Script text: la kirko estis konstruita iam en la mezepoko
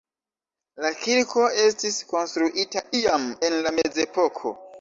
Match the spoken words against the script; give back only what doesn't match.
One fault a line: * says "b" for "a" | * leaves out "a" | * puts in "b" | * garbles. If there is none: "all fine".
all fine